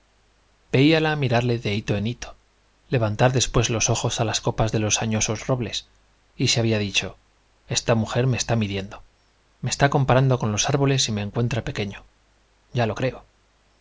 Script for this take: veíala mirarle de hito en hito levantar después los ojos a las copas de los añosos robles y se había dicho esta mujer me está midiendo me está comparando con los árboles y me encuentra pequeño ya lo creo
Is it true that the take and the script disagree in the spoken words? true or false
false